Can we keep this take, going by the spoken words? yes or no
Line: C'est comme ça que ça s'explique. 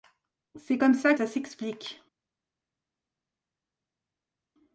no